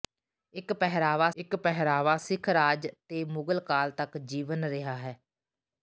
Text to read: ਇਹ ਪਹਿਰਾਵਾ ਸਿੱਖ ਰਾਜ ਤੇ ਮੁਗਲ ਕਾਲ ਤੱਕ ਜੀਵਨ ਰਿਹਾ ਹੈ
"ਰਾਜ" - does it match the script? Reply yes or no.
yes